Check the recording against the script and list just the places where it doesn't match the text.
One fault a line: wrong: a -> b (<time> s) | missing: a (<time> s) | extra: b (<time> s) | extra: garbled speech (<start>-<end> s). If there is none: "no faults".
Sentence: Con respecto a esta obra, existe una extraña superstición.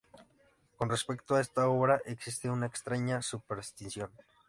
no faults